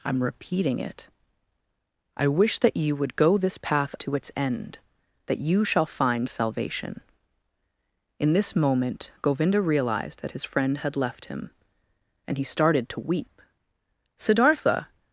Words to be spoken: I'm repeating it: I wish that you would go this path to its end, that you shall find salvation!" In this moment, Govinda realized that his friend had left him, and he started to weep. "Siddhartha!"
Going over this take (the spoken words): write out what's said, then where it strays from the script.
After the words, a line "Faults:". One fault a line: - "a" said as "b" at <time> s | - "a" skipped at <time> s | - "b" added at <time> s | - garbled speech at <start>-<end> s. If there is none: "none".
I'm repeating it: I wish that you would go this path to its end, that you shall find salvation!" In this moment, Govinda realized that his friend had left him, and he started to weep. "Siddhartha!"
Faults:
none